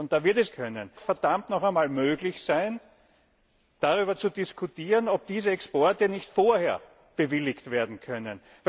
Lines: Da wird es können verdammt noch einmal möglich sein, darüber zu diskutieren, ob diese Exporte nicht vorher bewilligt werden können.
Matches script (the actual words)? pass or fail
pass